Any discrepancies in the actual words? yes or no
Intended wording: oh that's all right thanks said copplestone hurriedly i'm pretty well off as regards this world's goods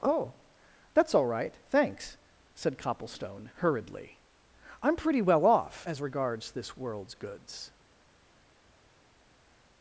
no